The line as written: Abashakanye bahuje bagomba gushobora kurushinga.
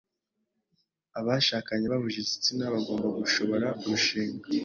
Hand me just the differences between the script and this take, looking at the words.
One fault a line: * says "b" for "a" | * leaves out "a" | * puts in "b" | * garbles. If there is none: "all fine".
* puts in "igitsina"